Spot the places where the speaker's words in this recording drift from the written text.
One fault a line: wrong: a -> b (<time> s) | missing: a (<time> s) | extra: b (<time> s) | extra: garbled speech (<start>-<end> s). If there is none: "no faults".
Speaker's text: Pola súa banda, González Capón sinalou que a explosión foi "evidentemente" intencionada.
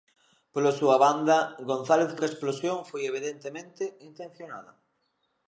missing: Capón sinalou (2.1 s)